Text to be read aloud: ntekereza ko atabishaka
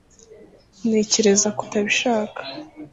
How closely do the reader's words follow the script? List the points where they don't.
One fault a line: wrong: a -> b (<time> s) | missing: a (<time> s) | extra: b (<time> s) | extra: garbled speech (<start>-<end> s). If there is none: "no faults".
no faults